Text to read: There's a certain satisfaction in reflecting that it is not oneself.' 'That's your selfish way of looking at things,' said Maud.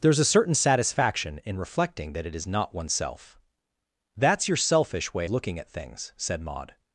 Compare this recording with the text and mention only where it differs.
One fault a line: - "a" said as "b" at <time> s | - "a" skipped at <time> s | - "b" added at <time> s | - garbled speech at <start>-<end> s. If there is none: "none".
- "of" skipped at 5.3 s